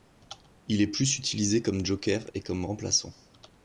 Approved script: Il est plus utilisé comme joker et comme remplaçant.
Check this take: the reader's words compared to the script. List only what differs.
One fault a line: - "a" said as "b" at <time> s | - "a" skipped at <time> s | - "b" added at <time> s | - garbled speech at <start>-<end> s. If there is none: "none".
none